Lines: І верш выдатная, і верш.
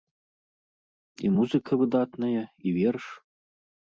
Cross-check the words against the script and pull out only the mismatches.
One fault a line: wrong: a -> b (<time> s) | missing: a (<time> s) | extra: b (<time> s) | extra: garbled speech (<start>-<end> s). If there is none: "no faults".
wrong: верш -> музыка (1.4 s)